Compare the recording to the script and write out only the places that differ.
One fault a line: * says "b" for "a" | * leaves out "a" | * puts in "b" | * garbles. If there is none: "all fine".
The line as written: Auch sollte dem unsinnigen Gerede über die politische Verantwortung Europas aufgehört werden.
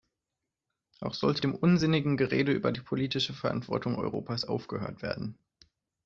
all fine